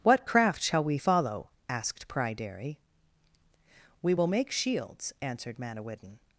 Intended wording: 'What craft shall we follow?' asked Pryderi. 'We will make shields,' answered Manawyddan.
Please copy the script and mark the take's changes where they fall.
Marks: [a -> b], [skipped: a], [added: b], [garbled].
'What craft shall we follow?' asked Pryderi. 'We will make shields,' answered Manawyddan.